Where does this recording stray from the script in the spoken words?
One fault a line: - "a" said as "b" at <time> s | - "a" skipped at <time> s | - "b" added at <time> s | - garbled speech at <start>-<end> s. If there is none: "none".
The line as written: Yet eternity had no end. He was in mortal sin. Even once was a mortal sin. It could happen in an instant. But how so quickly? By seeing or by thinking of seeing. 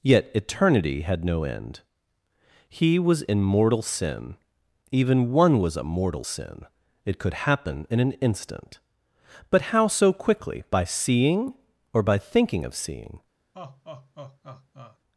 - "once" said as "one" at 5.3 s